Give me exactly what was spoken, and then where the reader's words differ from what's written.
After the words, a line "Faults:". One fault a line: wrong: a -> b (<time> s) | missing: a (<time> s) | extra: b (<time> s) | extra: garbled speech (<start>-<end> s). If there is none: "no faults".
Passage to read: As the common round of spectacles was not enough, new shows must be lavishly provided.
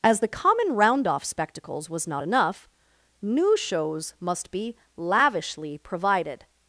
As the common round off spectacles was not enough, new shows must be lavishly provided.
Faults:
wrong: of -> off (1.1 s)